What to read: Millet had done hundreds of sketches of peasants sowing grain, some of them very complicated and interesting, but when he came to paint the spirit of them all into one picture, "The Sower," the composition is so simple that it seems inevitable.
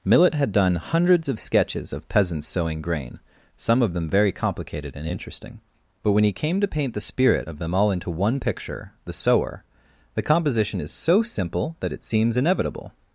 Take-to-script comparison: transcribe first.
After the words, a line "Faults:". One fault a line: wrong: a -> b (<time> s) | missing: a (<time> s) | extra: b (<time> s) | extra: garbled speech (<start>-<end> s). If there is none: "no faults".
Millet had done hundreds of sketches of peasants sowing grain, some of them very complicated and interesting, but when he came to paint the spirit of them all into one picture, "The Sower," the composition is so simple that it seems inevitable.
Faults:
no faults